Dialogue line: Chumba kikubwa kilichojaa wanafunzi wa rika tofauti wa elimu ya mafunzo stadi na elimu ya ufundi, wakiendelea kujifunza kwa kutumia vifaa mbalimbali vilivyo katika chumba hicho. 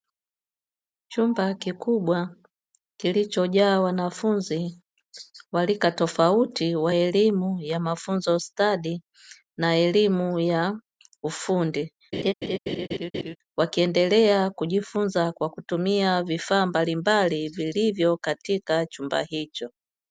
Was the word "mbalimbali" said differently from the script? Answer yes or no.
no